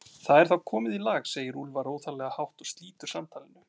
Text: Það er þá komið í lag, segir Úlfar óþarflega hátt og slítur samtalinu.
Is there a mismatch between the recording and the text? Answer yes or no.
no